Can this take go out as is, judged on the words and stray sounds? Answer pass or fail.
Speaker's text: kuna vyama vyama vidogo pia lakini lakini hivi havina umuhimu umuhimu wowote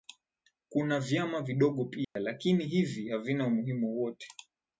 fail